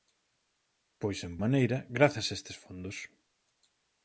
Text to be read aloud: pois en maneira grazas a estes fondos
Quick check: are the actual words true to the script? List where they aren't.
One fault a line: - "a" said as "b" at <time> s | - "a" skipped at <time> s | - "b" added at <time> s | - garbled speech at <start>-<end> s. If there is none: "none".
none